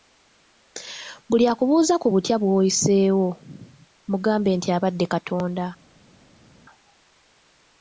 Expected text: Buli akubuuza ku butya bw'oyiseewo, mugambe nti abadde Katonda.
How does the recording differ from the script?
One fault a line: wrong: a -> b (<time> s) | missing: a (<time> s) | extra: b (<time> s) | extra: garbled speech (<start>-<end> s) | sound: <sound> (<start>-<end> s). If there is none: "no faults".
no faults